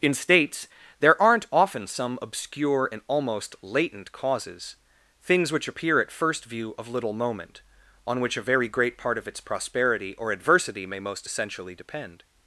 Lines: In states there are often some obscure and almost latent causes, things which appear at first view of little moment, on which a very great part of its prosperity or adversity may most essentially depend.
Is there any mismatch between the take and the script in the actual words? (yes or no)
yes